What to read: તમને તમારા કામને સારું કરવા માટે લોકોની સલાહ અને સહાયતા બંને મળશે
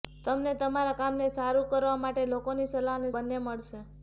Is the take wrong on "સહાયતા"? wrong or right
wrong